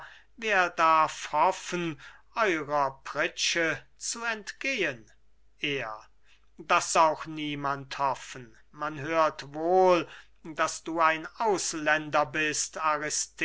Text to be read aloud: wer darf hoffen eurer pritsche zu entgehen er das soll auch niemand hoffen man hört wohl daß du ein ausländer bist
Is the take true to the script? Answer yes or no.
no